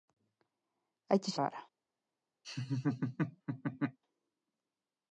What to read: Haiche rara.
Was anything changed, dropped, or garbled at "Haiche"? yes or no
no